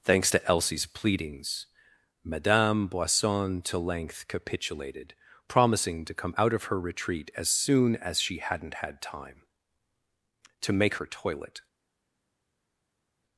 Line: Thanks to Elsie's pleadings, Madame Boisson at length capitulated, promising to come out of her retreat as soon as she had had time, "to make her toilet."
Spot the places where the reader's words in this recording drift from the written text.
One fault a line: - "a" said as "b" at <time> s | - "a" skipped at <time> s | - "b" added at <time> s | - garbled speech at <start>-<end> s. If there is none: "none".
- "at" said as "to" at 3.6 s
- "had" said as "hadn't" at 8.4 s